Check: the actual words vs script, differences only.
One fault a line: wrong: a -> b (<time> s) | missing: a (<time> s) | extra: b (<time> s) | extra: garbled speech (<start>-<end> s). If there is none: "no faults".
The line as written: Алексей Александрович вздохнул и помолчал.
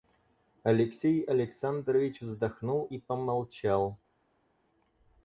no faults